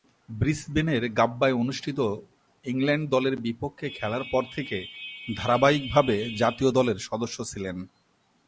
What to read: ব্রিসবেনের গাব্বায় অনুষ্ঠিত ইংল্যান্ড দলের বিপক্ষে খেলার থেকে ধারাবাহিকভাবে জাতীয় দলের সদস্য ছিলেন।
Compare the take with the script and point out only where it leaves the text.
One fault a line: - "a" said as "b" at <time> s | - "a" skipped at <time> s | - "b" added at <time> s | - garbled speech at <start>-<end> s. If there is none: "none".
- "পর" added at 4.3 s